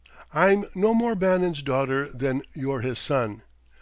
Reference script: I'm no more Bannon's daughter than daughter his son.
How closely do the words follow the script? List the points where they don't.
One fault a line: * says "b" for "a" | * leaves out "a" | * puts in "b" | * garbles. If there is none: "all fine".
* says "you're" for "daughter"